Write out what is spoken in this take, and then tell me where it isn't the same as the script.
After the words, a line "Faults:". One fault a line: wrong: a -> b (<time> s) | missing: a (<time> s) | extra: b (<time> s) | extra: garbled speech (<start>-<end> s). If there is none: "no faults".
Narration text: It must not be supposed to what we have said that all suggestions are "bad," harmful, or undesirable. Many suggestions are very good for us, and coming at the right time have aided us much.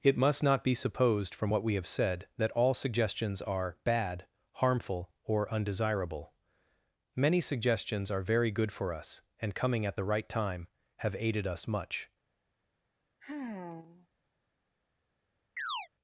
It must not be supposed from what we have said that all suggestions are "bad," harmful, or undesirable. Many suggestions are very good for us, and coming at the right time have aided us much.
Faults:
wrong: to -> from (1.3 s)